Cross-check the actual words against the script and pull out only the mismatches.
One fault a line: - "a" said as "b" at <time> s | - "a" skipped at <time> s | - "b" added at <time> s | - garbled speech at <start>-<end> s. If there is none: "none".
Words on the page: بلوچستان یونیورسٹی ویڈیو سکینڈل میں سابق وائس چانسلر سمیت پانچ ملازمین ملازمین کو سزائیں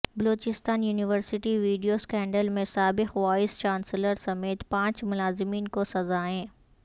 - "ملازمین" skipped at 5.7 s